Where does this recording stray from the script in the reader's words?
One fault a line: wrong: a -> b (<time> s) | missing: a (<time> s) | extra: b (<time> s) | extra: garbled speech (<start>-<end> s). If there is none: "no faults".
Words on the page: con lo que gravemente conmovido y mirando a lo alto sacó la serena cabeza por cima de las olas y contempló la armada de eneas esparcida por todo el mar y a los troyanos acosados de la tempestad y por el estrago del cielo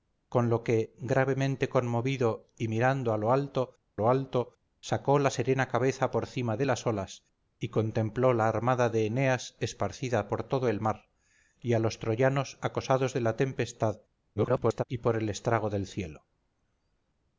extra: lo alto (4.0 s)
extra: garbled speech (14.4-14.8 s)